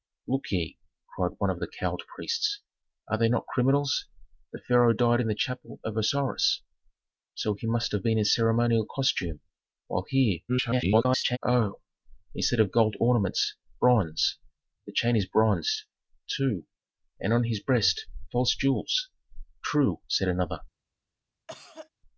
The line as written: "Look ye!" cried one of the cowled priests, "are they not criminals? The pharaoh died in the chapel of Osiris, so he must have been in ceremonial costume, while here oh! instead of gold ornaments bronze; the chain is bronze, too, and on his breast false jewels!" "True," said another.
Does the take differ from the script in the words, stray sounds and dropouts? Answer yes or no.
yes